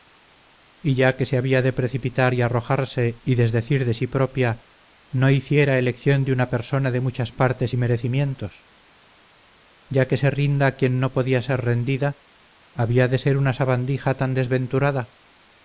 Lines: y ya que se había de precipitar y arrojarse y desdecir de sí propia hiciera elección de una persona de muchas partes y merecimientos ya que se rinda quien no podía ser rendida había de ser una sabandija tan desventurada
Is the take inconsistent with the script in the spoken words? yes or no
yes